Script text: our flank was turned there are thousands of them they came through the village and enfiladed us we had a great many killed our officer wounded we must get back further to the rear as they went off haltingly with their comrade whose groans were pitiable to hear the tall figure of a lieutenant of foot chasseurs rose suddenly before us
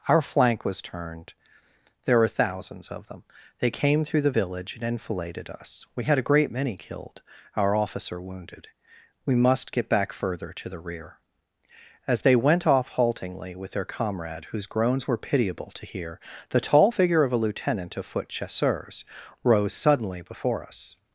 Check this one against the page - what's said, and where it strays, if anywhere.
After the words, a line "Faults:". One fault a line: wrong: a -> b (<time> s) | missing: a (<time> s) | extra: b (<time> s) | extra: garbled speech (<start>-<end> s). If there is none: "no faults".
our flank was turned there were thousands of them they came through the village and enfiladed us we had a great many killed our officer wounded we must get back further to the rear as they went off haltingly with their comrade whose groans were pitiable to hear the tall figure of a lieutenant of foot chasseurs rose suddenly before us
Faults:
wrong: are -> were (2.2 s)